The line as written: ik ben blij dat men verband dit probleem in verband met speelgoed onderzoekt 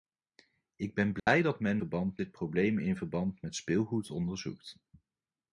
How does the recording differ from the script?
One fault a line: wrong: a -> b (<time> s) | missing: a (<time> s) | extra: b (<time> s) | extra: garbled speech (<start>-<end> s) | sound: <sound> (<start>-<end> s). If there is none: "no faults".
sound: dropout (1.2-1.3 s)